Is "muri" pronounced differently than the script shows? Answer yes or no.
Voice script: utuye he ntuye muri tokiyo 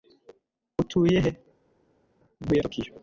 yes